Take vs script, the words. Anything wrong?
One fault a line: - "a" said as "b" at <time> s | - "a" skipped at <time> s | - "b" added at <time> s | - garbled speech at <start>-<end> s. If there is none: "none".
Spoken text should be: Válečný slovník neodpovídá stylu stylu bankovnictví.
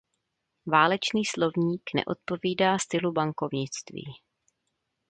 - "stylu" skipped at 3.1 s